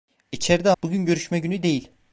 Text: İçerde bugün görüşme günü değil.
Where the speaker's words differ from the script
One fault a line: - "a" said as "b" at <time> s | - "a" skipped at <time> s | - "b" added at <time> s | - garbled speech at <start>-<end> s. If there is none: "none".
none